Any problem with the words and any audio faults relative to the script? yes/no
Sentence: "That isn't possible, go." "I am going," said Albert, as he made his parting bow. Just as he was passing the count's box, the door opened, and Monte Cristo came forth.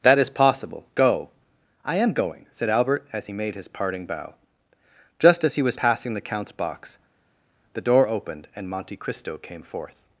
yes